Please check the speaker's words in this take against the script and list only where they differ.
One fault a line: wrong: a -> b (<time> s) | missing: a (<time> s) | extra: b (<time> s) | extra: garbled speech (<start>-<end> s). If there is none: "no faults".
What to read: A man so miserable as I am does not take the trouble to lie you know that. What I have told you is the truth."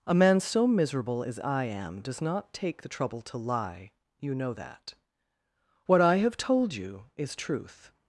missing: the (7.3 s)